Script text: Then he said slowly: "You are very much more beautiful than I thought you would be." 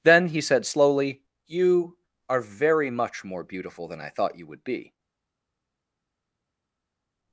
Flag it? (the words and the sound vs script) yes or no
no